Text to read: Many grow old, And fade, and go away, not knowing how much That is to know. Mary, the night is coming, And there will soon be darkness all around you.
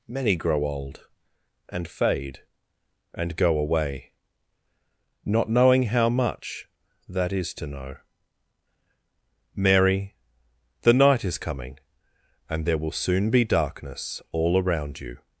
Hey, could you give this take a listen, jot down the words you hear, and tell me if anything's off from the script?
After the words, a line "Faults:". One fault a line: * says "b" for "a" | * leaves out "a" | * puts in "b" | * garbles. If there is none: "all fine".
Many grow old, And fade, and go away, not knowing how much That is to know. Mary, the night is coming, And there will soon be darkness all around you.
Faults:
all fine